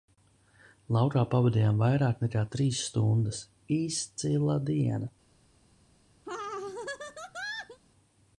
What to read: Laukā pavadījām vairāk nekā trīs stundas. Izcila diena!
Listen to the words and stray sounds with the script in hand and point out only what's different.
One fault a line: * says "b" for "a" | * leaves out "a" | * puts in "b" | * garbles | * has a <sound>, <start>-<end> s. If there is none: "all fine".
* has a laugh, 6.3-7.8 s